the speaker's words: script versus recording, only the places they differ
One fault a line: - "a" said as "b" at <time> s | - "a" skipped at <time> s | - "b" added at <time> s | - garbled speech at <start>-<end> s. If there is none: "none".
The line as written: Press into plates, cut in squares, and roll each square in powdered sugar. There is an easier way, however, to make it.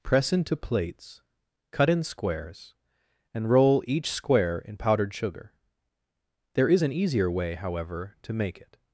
none